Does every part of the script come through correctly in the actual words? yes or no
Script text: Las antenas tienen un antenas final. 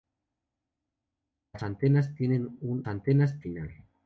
yes